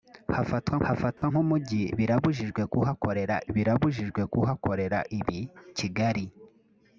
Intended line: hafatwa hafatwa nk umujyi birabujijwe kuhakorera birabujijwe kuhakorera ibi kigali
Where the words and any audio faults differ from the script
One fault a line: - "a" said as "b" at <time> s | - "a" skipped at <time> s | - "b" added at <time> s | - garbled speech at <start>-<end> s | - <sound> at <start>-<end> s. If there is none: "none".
- dropout at 1.2-1.2 s